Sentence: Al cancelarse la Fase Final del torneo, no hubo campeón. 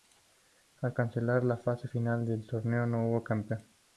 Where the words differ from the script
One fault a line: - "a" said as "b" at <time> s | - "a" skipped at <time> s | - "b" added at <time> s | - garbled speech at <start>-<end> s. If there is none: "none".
none